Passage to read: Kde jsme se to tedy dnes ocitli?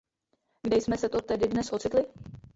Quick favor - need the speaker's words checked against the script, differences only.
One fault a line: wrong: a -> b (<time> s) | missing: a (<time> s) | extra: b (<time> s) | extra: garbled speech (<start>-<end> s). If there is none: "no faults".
no faults